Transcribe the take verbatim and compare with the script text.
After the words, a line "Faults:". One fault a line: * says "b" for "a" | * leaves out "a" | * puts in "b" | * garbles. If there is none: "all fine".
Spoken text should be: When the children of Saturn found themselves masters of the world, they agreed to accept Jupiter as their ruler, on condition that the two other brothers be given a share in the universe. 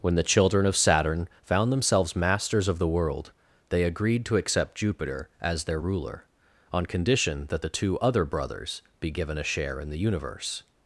When the children of Saturn found themselves masters of the world, they agreed to accept Jupiter as their ruler, on condition that the two other brothers be given a share in the universe.
Faults:
all fine